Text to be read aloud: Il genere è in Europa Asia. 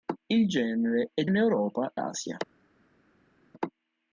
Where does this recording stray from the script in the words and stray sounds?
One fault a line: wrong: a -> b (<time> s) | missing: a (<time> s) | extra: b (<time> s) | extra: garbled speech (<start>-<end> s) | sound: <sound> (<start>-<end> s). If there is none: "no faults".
no faults